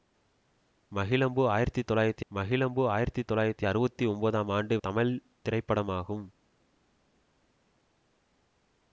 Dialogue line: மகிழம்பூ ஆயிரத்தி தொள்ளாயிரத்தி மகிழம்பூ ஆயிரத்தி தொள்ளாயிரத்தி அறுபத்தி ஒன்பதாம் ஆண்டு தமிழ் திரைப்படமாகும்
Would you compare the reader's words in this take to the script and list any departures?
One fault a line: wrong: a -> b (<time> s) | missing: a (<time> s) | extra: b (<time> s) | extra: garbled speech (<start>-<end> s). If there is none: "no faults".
no faults